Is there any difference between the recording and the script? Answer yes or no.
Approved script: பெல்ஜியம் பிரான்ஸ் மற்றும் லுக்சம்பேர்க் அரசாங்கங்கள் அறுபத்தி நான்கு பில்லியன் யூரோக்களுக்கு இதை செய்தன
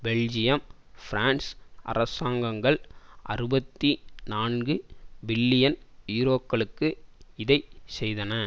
yes